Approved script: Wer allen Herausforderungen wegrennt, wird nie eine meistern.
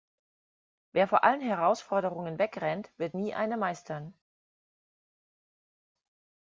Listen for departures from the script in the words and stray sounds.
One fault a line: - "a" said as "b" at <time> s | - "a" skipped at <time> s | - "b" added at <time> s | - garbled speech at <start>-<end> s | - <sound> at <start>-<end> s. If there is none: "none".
- "vor" added at 1.1 s